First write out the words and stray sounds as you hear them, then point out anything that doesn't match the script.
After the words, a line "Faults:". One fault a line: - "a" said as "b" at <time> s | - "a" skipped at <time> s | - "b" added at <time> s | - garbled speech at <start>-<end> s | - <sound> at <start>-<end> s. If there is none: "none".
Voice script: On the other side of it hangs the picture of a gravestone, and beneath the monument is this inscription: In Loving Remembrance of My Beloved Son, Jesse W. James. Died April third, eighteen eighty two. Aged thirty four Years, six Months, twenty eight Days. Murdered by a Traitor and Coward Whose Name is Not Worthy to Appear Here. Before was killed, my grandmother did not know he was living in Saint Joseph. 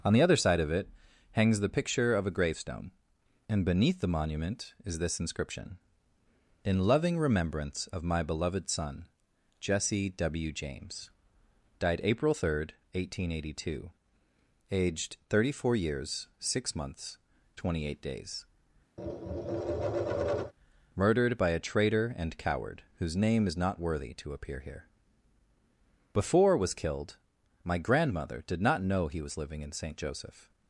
On the other side of it hangs the picture of a gravestone, and beneath the monument is this inscription: In Loving Remembrance of My Beloved Son, Jesse W. James. Died April third, eighteen eighty two. Aged thirty four Years, six Months, twenty eight Days. Murdered by a Traitor and Coward Whose Name is Not Worthy to Appear Here. Before was killed, my grandmother did not know he was living in Saint Joseph.
Faults:
- tap at 19.0-20.5 s